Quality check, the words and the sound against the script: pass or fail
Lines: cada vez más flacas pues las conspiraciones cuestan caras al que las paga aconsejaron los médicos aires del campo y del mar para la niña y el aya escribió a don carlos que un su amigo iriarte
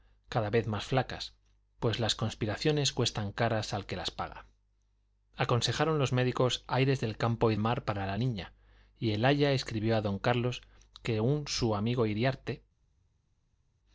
fail